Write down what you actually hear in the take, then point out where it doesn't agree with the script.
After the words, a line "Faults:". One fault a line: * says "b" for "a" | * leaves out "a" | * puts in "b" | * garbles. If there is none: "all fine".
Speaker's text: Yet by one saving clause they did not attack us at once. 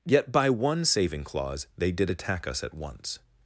Yet by one saving clause they did attack us at once.
Faults:
* leaves out "not"